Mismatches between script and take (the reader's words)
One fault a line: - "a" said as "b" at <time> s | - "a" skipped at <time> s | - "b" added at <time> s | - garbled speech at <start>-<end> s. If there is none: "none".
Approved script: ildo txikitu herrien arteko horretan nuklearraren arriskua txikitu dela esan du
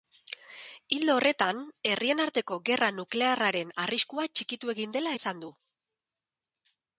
- "txikitu" said as "horretan" at 1.2 s
- "horretan" said as "gerra" at 2.7 s
- "egin" added at 4.8 s